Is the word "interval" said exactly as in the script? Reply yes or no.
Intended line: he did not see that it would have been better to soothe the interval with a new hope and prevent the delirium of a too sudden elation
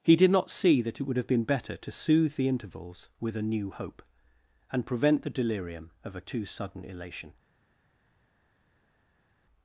no